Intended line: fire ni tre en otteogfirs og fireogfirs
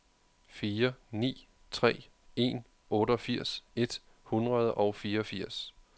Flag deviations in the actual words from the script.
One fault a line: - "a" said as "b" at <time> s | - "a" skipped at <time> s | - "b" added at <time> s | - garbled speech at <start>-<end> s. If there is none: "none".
- "et hundrede" added at 3.8 s